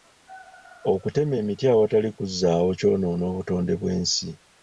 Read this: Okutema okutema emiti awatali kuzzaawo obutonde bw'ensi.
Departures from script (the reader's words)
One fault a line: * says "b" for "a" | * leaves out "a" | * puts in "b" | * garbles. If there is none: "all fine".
* leaves out "okutema"
* puts in "kyonoona"